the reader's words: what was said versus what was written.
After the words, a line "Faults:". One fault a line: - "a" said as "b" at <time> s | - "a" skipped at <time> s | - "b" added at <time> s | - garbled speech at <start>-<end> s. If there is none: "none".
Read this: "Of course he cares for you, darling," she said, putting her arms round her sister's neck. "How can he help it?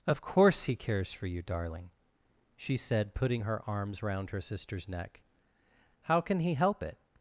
"Of course he cares for you, darling," she said, putting her arms round her sister's neck. "How can he help it?
Faults:
none